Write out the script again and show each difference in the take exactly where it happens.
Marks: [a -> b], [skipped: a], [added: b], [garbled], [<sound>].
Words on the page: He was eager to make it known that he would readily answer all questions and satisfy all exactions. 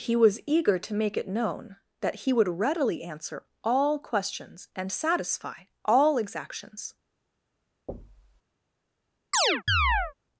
He was eager to make it known that he would readily answer all questions and satisfy all exactions. [thud] [chirp]